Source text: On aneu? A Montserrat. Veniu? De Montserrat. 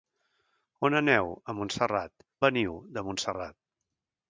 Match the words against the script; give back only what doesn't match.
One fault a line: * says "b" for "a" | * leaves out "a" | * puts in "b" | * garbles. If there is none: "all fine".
all fine